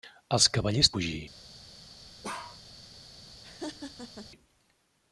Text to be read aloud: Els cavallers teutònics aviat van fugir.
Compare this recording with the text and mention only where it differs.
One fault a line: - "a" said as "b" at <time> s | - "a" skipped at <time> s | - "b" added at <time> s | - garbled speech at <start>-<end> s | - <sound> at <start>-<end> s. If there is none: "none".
- "teutònics aviat van" skipped at 0.9 s
- bark at 2.2-2.6 s
- laugh at 3.4-4.3 s